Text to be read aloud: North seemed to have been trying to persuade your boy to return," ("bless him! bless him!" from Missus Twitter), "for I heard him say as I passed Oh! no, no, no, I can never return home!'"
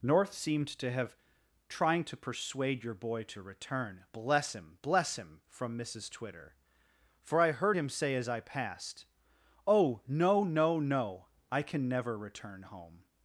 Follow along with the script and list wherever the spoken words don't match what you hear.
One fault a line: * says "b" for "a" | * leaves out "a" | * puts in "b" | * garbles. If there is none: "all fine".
* leaves out "been"